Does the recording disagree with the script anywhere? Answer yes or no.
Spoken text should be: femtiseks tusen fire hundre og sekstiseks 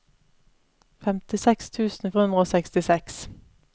yes